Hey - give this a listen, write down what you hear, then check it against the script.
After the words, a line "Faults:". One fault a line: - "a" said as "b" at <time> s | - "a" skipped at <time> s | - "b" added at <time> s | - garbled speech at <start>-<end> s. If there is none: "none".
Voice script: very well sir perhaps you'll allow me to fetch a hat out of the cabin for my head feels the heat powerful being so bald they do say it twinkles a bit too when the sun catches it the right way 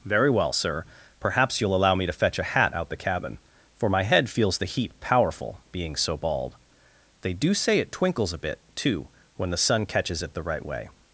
very well sir perhaps you'll allow me to fetch a hat out the cabin for my head feels the heat powerful being so bald they do say it twinkles a bit too when the sun catches it the right way
Faults:
- "of" skipped at 2.9 s